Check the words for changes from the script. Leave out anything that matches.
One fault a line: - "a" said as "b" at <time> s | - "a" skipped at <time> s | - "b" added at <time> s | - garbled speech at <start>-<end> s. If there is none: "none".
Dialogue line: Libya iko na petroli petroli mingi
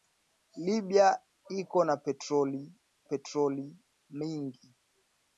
none